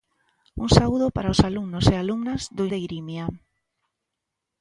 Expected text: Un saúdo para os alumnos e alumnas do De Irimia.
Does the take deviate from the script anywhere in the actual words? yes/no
no